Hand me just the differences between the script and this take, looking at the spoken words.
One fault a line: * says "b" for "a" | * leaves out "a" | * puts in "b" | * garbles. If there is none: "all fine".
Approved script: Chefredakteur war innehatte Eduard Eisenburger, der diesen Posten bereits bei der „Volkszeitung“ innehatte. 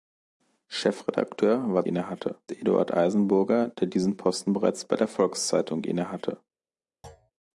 all fine